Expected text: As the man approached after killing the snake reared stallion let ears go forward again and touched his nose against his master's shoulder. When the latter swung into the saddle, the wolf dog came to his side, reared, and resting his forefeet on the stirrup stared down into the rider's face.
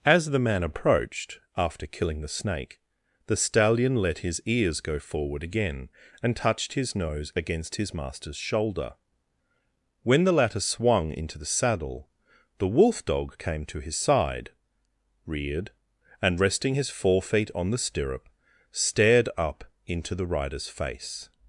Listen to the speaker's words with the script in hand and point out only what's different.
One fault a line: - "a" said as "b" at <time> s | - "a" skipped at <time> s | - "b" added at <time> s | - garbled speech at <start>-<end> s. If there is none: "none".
- "reared" said as "the" at 3.3 s
- "his" added at 4.2 s
- "down" said as "up" at 19.4 s